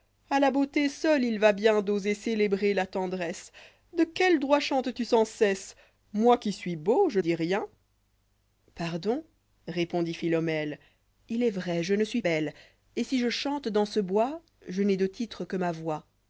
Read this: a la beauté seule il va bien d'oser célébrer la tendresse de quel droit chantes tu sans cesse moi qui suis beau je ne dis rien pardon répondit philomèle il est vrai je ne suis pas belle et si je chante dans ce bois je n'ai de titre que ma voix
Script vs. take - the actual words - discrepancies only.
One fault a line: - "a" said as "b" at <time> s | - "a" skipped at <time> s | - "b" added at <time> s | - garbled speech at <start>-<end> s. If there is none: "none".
- "ne" skipped at 7.2 s
- "pas" skipped at 12.2 s